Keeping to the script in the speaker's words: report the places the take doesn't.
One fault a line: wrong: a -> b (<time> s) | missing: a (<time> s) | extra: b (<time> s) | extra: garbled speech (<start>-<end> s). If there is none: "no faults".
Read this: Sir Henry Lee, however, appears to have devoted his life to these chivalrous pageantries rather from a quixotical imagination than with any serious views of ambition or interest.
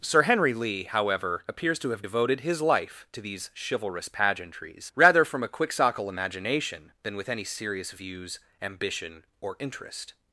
missing: of (8.4 s)